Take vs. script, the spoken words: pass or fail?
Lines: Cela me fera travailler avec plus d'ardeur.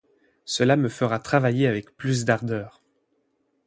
pass